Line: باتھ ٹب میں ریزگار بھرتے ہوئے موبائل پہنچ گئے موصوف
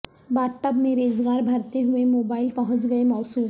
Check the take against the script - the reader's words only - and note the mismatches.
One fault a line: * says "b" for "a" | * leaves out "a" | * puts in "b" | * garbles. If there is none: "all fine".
all fine